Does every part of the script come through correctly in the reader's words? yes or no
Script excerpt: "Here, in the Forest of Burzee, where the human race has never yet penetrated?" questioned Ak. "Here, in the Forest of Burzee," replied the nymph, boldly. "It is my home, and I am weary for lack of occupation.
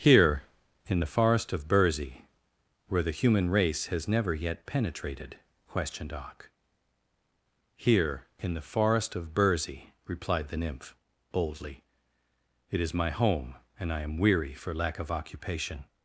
yes